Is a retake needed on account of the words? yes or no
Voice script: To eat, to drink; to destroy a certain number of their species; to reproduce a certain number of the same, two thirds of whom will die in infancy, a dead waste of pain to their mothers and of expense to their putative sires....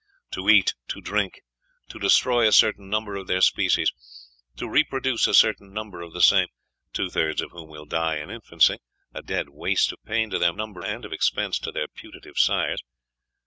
yes